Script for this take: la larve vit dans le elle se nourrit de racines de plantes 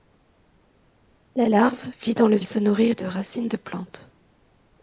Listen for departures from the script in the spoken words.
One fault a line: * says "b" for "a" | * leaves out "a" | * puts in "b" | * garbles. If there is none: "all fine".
all fine